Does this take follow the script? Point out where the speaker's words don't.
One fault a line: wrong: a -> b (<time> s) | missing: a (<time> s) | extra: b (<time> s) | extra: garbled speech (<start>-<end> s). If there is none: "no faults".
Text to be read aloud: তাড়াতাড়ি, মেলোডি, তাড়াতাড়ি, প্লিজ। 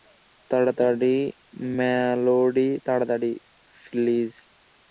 no faults